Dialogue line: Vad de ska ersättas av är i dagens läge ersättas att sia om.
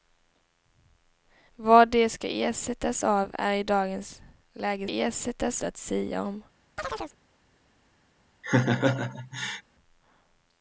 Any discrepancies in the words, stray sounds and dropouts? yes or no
yes